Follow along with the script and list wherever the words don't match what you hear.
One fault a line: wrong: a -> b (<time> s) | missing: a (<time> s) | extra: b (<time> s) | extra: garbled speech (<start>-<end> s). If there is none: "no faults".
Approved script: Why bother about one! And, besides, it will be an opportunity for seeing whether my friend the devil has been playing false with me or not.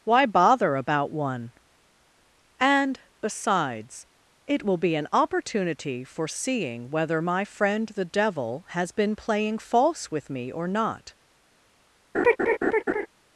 no faults